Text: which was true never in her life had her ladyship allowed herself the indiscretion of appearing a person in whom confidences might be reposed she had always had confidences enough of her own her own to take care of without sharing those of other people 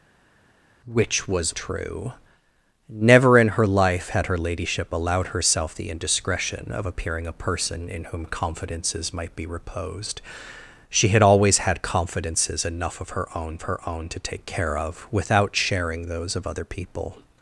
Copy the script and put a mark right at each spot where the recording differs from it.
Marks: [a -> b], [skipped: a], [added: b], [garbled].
which was true never in her life had her ladyship allowed herself the indiscretion of appearing a person in whom confidences might be reposed she had always had confidences enough of her own her own to take care of without sharing those of other people